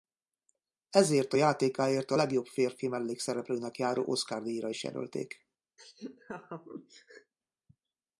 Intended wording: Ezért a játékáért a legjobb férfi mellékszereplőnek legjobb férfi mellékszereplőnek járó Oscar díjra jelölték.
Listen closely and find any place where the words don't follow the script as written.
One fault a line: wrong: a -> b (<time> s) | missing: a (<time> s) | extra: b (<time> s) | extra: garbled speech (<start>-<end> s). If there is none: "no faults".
missing: legjobb férfi mellékszereplőnek (3.8 s)
extra: is (4.7 s)